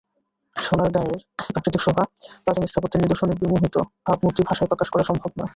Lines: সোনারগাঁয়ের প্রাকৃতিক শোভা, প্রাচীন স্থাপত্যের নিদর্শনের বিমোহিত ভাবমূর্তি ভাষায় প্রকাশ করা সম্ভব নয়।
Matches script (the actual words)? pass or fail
pass